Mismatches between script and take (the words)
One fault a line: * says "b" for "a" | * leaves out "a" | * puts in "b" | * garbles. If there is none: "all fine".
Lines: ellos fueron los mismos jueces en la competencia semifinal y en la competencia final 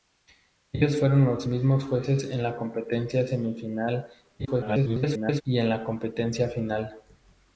* garbles